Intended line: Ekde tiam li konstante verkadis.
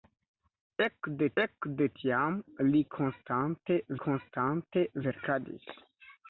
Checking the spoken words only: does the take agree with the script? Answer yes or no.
no